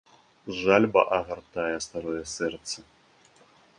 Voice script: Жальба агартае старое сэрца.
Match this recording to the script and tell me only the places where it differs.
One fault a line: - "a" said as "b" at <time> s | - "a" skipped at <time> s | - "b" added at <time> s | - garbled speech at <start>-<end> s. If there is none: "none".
none